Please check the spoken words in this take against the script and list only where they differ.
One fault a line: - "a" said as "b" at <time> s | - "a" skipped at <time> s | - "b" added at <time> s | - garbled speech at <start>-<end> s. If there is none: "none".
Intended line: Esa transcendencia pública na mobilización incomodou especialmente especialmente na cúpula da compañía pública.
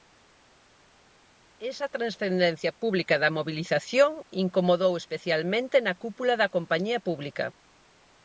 - "na" said as "da" at 3.2 s
- "especialmente" skipped at 5.8 s